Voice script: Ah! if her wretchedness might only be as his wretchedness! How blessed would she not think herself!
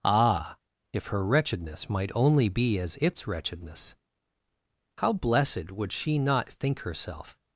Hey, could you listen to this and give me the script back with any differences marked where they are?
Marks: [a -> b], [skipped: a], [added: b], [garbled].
Ah! if her wretchedness might only be as [his -> its] wretchedness! How blessed would she not think herself!